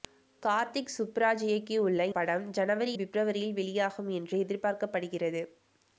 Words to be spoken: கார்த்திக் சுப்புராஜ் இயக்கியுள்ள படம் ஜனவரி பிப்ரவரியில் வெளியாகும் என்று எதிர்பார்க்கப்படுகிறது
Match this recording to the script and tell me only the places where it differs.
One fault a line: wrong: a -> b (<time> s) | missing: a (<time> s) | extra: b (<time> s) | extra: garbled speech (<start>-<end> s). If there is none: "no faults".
no faults